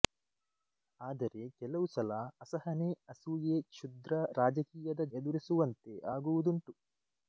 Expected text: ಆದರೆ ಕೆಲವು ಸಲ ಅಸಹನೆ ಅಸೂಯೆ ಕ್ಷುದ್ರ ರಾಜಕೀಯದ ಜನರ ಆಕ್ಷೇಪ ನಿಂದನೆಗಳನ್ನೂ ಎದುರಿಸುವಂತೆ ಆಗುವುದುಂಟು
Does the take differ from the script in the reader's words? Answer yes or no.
yes